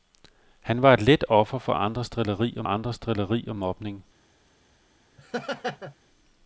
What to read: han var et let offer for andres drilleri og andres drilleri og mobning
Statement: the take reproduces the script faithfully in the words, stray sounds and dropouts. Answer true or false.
false